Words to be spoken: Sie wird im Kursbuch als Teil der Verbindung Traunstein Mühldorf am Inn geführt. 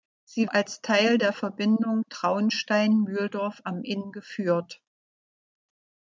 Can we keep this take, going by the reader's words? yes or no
no